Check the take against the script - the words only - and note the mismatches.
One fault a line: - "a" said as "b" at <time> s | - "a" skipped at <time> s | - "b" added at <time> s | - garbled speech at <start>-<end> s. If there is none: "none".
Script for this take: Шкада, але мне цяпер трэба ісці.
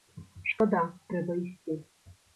- "але мне цяпер" skipped at 0.8 s